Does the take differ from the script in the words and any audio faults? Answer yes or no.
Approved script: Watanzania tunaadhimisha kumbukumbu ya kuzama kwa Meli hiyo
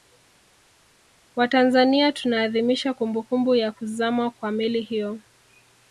no